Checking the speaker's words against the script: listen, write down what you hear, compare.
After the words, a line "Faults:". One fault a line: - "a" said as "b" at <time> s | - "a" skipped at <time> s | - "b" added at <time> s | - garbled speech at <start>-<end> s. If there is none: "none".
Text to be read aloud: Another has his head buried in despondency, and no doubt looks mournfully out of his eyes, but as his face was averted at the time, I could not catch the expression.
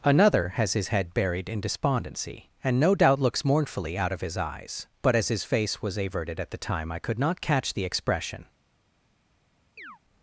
Another has his head buried in despondency, and no doubt looks mournfully out of his eyes, but as his face was averted at the time, I could not catch the expression.
Faults:
none